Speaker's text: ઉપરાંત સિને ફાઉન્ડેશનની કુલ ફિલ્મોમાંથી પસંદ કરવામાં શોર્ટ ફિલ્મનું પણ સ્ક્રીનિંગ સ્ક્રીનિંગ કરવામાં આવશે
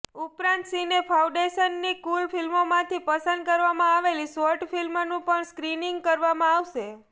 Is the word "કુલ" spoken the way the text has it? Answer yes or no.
yes